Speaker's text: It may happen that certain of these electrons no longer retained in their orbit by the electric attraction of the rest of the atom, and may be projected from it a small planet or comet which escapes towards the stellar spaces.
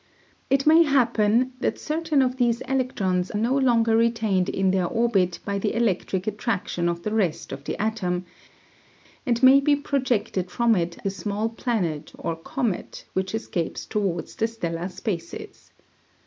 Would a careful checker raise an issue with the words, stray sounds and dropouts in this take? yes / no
no